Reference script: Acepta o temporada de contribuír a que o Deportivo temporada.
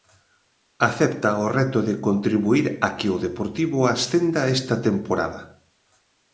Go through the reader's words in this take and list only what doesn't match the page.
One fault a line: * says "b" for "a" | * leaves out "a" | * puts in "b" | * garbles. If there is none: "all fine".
* says "reto" for "temporada"
* puts in "ascenda esta"